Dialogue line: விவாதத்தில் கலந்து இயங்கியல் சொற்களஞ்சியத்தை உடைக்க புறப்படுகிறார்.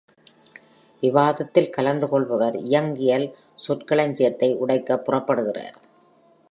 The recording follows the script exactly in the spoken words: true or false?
false